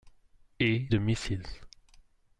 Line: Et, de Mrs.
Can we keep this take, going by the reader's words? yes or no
yes